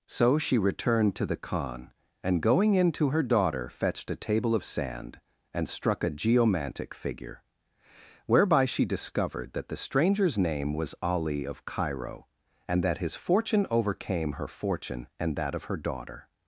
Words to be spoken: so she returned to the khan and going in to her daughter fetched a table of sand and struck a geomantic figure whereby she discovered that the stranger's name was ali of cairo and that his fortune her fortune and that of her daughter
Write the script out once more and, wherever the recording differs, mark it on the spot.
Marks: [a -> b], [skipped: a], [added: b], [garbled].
so she returned to the khan and going in to her daughter fetched a table of sand and struck a geomantic figure whereby she discovered that the stranger's name was ali of cairo and that his fortune [added: overcame] her fortune and that of her daughter